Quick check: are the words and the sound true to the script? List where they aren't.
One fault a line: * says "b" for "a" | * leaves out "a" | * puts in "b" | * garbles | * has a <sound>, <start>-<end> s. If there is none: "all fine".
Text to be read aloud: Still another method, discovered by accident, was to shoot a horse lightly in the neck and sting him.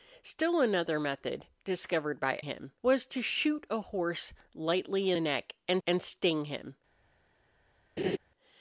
* says "him" for "accident"
* leaves out "in"
* puts in "and"
* has a laugh, 8.0-8.2 s